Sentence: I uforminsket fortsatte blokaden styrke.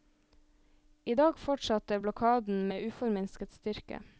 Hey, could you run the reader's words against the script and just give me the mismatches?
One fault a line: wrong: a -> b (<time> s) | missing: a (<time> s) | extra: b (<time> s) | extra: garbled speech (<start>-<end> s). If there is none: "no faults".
wrong: uforminsket -> dag (1.1 s)
extra: med uforminsket (2.7 s)